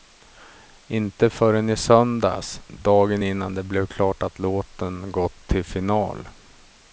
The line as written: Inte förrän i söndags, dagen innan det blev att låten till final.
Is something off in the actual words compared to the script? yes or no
yes